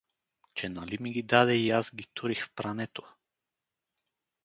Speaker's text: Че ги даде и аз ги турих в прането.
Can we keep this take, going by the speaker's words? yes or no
no